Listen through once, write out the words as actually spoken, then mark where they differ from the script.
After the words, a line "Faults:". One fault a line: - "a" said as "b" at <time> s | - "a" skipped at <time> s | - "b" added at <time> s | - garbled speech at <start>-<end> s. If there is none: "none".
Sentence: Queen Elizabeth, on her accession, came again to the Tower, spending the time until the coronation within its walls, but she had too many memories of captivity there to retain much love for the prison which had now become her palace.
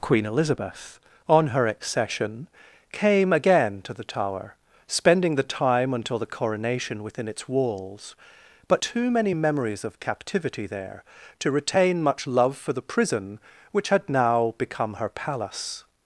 Queen Elizabeth, on her accession, came again to the Tower, spending the time until the coronation within its walls, but too many memories of captivity there to retain much love for the prison which had now become her palace.
Faults:
- "she had" skipped at 8.8 s